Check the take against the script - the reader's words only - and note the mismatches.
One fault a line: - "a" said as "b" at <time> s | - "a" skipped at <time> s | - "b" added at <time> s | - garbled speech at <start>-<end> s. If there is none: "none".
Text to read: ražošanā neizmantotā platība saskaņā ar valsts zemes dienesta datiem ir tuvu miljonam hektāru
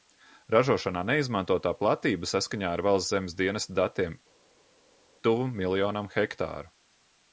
- "ir" skipped at 4.2 s